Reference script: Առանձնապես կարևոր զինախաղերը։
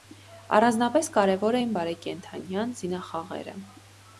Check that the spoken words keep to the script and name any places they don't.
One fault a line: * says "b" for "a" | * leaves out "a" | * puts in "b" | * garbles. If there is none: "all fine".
* puts in "էին բարեկենդանյան"